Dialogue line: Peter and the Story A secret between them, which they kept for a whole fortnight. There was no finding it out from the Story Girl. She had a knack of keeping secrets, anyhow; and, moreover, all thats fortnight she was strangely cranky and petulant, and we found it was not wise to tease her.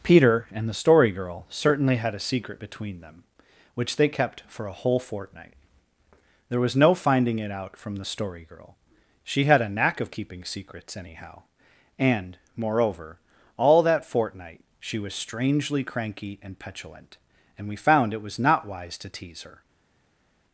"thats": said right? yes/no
no